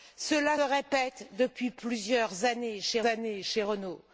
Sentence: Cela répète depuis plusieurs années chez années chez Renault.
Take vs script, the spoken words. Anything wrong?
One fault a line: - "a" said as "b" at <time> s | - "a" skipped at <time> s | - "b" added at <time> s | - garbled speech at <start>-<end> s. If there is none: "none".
none